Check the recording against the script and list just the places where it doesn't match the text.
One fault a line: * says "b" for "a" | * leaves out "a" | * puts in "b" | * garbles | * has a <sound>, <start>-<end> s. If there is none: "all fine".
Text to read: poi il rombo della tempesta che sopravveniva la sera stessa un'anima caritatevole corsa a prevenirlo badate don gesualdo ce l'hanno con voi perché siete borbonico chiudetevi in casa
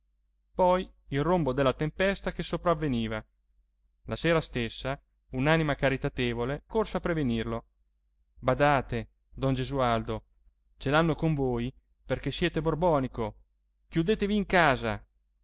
all fine